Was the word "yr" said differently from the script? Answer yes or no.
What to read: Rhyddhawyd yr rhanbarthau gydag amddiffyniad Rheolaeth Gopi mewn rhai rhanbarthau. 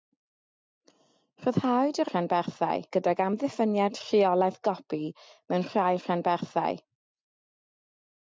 no